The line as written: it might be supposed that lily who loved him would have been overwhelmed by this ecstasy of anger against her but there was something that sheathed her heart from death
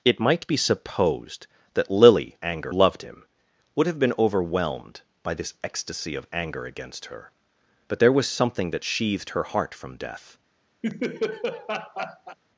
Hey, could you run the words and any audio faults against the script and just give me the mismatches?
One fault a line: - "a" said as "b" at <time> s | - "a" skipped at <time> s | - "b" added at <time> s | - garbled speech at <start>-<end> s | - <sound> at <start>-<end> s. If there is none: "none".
- "who" said as "anger" at 2.4 s
- laugh at 10.8-12.4 s